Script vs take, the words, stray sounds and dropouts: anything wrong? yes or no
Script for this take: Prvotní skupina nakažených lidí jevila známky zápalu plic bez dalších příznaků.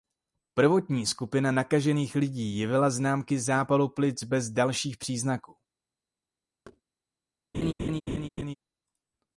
yes